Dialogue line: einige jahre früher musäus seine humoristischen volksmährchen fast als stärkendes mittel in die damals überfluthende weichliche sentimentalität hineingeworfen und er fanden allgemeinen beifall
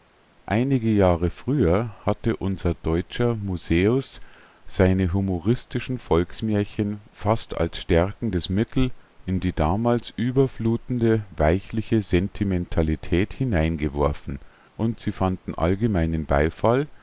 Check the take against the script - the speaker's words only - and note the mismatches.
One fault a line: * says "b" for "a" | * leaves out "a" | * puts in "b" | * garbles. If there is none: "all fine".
* puts in "hatte unser deutscher"
* says "sie" for "er"